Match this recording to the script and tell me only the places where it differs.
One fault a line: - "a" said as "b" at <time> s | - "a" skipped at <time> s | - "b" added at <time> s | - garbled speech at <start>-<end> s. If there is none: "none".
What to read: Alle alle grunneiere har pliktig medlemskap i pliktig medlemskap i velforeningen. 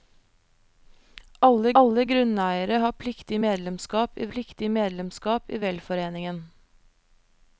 none